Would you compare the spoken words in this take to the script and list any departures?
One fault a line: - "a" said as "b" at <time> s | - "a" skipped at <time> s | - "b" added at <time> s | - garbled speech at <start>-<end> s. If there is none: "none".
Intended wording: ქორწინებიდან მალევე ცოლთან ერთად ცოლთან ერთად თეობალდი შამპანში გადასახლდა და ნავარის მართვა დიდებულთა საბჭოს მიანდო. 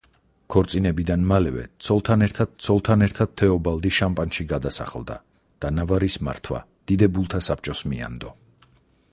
none